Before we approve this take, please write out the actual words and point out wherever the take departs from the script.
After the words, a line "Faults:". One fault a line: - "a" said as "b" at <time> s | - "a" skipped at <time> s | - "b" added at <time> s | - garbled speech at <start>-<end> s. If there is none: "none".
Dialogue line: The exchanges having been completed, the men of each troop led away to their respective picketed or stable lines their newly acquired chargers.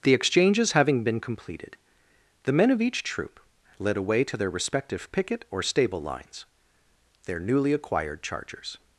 The exchanges having been completed, the men of each troop led away to their respective picket or stable lines their newly acquired chargers.
Faults:
- "picketed" said as "picket" at 5.1 s